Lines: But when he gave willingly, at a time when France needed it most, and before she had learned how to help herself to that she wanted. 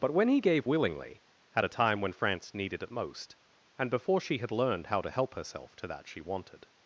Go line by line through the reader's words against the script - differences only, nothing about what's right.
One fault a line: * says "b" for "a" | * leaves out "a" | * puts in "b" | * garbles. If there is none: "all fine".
all fine